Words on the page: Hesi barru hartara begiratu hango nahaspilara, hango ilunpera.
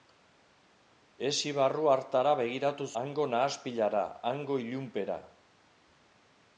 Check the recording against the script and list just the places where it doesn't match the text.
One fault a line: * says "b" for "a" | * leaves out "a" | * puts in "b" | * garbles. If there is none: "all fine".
all fine